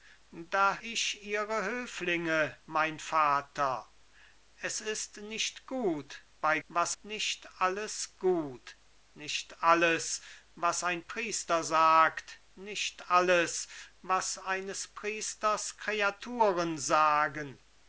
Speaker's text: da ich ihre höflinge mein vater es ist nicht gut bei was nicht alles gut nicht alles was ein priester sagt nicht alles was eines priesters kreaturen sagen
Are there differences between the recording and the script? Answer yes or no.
no